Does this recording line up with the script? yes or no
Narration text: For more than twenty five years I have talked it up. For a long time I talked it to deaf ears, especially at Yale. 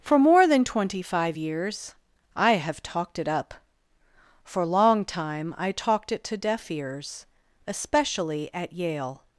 no